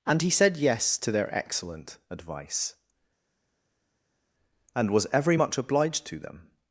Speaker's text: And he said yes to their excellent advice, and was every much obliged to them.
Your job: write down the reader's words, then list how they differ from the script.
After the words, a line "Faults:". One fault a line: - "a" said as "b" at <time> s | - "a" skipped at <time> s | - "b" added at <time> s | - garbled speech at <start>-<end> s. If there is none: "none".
And he said yes to their excellent advice, and was every much obliged to them.
Faults:
none